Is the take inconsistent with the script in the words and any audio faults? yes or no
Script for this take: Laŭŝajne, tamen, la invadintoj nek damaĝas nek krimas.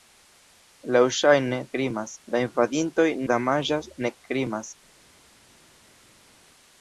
yes